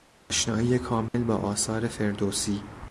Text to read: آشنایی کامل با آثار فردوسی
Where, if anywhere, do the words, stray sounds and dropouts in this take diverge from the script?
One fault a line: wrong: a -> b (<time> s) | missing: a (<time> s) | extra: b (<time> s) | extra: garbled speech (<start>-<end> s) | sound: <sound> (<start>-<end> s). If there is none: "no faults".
sound: dropout (1.1-1.1 s)